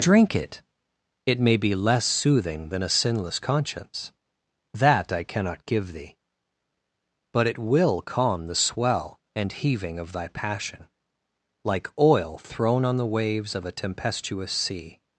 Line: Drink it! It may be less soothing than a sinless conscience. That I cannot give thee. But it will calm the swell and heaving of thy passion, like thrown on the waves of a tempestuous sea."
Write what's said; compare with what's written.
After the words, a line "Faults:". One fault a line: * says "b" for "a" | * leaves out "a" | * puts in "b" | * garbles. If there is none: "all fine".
Drink it! It may be less soothing than a sinless conscience. That I cannot give thee. But it will calm the swell and heaving of thy passion, like oil thrown on the waves of a tempestuous sea."
Faults:
* puts in "oil"